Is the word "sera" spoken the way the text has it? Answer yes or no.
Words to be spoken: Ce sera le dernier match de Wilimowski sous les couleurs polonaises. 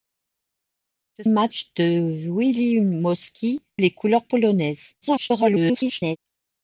no